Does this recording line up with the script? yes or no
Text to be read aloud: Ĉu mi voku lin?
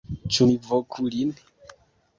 yes